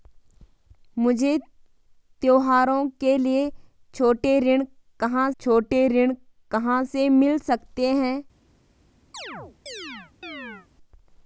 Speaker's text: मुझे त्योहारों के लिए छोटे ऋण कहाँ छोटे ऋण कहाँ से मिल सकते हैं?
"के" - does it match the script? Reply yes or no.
yes